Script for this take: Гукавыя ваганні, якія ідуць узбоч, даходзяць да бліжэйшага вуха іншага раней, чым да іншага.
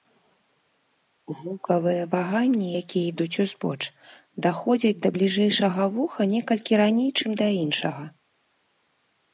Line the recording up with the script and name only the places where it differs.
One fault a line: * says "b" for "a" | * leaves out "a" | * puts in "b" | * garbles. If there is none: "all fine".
* says "некалькі" for "іншага"